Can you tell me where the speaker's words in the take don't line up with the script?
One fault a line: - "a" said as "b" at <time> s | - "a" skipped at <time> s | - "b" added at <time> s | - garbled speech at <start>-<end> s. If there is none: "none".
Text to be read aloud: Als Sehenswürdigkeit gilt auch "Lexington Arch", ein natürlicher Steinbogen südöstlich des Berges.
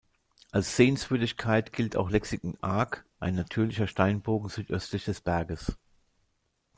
none